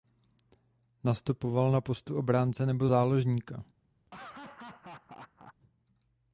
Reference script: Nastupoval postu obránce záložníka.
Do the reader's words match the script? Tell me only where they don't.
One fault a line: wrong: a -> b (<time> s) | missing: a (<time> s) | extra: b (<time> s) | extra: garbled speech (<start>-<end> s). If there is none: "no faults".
extra: na (1.7 s)
extra: nebo (2.6 s)